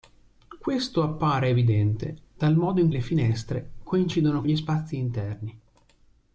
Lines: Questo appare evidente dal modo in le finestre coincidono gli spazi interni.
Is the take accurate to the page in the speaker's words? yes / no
yes